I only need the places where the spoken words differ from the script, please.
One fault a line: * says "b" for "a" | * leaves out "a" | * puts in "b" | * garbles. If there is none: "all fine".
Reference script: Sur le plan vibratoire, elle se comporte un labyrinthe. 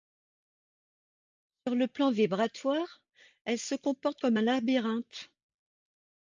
* puts in "comme"